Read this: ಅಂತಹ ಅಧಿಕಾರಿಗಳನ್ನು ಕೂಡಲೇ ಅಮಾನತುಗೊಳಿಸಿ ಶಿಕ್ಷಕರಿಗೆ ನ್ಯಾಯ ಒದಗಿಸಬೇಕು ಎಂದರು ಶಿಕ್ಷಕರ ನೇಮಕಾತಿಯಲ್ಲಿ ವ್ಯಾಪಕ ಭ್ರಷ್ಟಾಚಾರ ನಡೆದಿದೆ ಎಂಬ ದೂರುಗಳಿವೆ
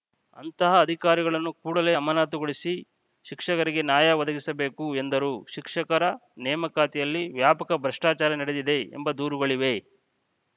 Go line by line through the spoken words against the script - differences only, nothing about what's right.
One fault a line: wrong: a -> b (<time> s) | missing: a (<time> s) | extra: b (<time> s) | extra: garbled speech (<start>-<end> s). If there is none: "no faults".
no faults